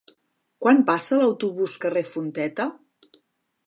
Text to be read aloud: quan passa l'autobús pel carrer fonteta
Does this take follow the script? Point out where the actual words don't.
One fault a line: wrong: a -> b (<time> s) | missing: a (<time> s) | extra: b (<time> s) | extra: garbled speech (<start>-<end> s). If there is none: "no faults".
missing: pel (1.7 s)